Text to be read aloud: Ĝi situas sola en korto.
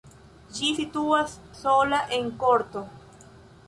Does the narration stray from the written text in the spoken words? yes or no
no